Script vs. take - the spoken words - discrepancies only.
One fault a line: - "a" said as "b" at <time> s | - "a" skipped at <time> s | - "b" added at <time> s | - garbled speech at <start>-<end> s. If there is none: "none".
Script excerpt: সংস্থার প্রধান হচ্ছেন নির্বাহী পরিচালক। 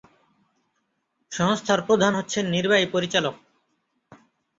none